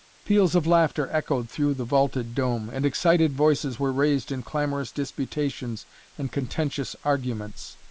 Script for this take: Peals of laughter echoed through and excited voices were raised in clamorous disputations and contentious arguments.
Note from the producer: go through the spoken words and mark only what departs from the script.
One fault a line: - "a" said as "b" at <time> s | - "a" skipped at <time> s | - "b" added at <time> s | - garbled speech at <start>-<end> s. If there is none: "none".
- "the vaulted dome" added at 1.8 s